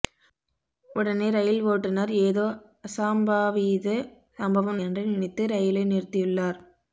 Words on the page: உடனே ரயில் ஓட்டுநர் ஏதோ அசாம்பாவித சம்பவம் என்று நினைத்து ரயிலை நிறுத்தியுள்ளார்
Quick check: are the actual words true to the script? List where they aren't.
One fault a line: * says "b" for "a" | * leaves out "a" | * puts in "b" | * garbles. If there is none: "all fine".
all fine